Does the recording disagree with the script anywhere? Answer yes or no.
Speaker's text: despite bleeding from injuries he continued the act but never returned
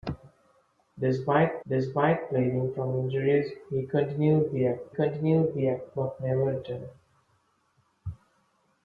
yes